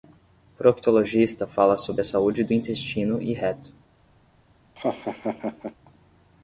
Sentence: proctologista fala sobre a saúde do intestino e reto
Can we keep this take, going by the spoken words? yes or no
yes